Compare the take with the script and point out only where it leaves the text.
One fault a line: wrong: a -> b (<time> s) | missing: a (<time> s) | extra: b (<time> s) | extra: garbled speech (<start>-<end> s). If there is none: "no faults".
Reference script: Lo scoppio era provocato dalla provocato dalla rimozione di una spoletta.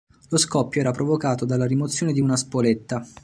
missing: provocato dalla (1.7 s)